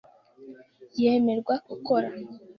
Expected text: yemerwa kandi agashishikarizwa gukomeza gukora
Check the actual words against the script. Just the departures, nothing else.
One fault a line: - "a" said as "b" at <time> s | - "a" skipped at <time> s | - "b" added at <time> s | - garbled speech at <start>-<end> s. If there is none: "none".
- "kandi agashishikarizwa gukomeza" skipped at 1.6 s